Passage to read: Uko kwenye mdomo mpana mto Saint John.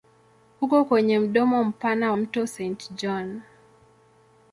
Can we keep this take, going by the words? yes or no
yes